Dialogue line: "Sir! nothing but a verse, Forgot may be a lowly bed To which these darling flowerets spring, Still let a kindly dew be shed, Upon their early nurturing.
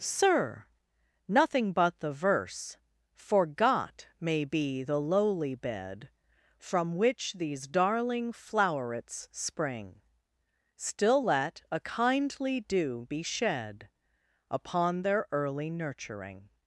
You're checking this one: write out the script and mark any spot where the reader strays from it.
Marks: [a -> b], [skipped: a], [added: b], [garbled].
"Sir! nothing but [a -> the] verse, Forgot may be [a -> the] lowly bed [To -> From] which these darling flowerets spring, Still let a kindly dew be shed, Upon their early nurturing.